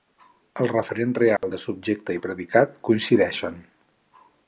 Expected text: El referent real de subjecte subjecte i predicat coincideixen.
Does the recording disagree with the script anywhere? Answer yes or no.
yes